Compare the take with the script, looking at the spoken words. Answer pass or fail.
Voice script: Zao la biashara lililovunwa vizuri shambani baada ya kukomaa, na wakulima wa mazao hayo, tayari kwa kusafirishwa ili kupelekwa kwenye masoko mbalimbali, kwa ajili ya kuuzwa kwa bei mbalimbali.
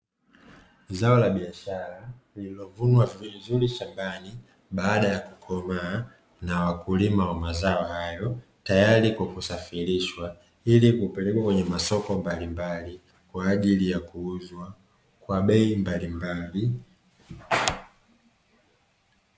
pass